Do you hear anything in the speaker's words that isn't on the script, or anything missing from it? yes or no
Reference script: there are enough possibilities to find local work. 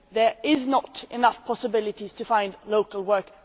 yes